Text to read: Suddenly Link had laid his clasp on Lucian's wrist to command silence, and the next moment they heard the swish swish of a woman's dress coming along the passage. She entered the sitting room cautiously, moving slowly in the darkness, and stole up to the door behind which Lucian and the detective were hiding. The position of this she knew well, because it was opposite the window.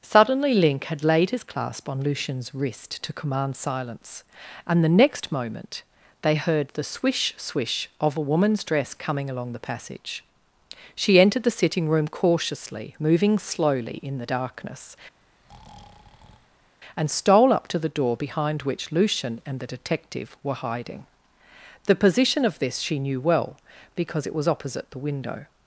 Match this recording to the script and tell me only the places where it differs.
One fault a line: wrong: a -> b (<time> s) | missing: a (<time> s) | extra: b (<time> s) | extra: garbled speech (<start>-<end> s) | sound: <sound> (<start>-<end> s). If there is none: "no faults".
sound: breath (15.2-16.8 s)